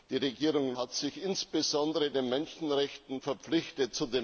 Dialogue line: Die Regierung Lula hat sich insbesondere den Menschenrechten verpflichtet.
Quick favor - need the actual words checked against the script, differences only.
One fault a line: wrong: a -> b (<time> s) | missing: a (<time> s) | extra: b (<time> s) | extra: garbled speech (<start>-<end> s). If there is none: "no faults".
missing: Lula (0.8 s)